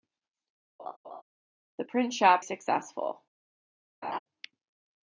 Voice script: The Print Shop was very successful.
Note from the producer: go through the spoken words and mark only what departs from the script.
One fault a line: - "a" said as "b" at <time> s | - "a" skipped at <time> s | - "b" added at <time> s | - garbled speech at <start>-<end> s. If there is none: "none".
- "was very" skipped at 2.4 s